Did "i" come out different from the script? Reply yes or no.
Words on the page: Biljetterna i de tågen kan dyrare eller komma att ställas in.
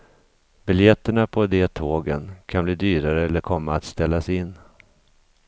yes